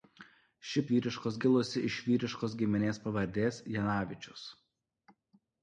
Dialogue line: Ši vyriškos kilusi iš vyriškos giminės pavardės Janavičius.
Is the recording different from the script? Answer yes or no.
no